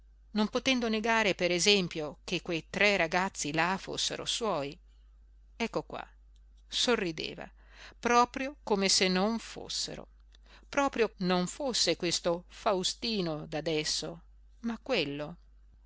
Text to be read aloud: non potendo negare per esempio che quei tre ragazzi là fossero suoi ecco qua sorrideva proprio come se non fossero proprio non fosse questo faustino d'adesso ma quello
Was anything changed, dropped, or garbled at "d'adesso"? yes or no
no